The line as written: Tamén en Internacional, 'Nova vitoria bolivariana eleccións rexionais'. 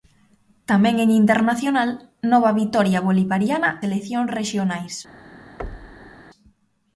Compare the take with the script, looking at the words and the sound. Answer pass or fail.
fail